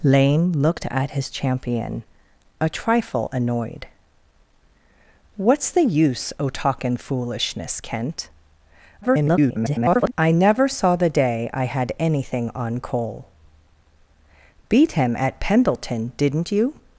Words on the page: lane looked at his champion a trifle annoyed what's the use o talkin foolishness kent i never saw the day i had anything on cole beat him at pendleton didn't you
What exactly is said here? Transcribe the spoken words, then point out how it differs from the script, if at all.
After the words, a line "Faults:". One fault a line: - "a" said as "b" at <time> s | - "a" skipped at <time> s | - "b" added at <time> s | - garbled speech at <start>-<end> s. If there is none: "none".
lane looked at his champion a trifle annoyed what's the use o talkin foolishness kent [garbled] i never saw the day i had anything on cole beat him at pendleton didn't you
Faults:
- garbled speech at 9.0-10.1 s